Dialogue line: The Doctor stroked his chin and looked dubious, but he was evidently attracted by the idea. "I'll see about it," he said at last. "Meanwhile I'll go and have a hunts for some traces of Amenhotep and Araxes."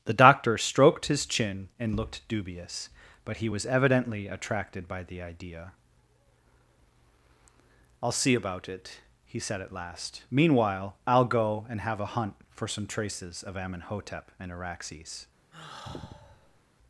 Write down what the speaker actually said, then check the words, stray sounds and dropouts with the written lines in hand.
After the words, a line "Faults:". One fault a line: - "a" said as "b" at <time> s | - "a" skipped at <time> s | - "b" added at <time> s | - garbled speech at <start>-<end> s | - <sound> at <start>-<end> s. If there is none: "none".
The Doctor stroked his chin and looked dubious, but he was evidently attracted by the idea. "I'll see about it," he said at last. "Meanwhile I'll go and have a hunt for some traces of Amenhotep and Araxes."
Faults:
- "hunts" said as "hunt" at 12.1 s
- sigh at 15.5-16.6 s